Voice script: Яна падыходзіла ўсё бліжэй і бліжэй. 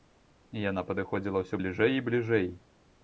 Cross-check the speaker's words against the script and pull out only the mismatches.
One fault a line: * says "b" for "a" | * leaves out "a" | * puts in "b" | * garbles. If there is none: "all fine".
all fine